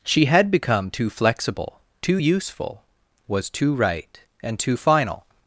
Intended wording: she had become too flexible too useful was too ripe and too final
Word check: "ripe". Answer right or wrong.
wrong